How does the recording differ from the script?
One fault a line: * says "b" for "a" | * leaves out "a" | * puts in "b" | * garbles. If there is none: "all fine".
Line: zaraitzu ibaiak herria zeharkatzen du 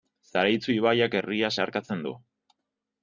all fine